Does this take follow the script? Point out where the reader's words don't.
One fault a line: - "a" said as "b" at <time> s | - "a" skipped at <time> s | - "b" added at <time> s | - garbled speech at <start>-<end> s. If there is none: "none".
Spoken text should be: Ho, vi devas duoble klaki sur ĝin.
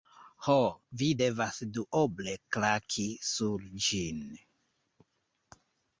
none